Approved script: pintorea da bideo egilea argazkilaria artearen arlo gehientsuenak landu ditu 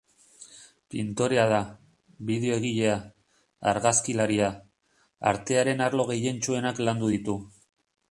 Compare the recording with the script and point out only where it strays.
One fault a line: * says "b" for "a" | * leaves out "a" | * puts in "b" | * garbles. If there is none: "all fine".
all fine